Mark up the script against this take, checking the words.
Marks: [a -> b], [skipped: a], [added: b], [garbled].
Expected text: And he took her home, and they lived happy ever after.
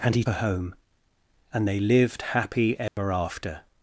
And he [skipped: took] her home, and they lived happy ever after.